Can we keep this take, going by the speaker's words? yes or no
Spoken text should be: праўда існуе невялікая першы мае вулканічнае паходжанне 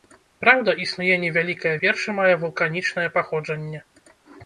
yes